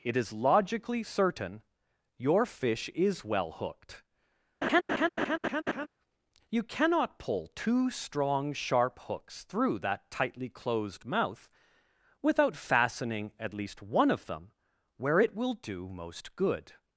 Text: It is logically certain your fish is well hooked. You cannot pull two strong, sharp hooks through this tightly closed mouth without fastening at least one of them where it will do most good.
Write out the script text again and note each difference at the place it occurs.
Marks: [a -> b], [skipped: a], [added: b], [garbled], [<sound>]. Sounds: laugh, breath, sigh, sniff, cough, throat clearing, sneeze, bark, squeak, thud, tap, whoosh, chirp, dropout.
It is logically certain your fish is well hooked. [laugh] You cannot pull two strong, sharp hooks through [this -> that] tightly closed mouth without fastening at least one of them where it will do most good.